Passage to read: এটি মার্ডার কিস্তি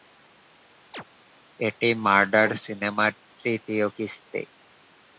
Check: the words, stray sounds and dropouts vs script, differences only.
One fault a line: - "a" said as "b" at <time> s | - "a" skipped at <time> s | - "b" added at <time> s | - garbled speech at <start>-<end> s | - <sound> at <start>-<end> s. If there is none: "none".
- chirp at 0.9-1.0 s
- "সিনেমার তৃতীয়" added at 2.6 s